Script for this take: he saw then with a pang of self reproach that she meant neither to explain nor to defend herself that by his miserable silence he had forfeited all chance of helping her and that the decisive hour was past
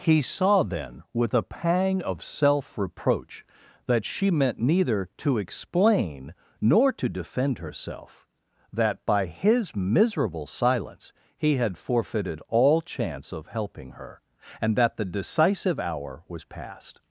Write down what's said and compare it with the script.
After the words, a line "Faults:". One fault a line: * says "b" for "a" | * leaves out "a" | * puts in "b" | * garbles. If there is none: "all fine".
he saw then with a pang of self reproach that she meant neither to explain nor to defend herself that by his miserable silence he had forfeited all chance of helping her and that the decisive hour was past
Faults:
all fine